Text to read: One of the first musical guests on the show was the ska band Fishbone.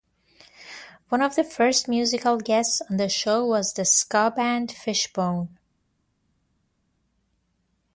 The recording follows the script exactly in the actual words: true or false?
true